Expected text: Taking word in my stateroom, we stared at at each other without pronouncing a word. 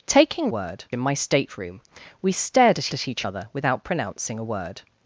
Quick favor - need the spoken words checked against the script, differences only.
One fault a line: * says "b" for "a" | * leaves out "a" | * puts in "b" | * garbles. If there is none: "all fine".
all fine